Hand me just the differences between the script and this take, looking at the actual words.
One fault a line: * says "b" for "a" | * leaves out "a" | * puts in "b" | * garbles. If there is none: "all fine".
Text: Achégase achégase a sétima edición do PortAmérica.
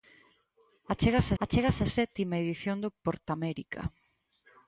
all fine